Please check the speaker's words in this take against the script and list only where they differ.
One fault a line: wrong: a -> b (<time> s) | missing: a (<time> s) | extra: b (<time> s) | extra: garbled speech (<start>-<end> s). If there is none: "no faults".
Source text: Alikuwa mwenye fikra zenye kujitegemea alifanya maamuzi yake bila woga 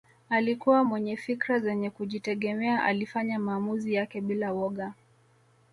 no faults